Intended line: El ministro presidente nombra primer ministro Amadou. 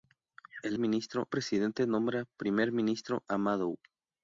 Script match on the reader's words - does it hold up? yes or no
yes